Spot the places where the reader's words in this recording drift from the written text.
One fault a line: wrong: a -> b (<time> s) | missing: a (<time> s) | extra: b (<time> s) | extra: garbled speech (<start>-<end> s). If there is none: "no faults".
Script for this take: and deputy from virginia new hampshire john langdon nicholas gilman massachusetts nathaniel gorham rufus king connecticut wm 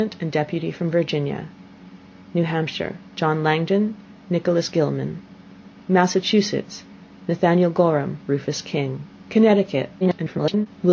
extra: garbled speech (10.0-10.7 s)